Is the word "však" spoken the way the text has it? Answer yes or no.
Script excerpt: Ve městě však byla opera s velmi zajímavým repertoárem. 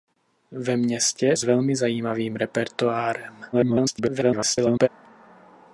no